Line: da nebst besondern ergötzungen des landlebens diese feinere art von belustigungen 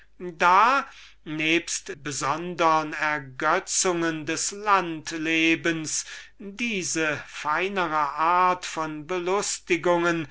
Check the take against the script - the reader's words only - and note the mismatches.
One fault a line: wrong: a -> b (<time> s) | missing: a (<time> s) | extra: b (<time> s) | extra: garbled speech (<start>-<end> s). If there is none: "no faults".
no faults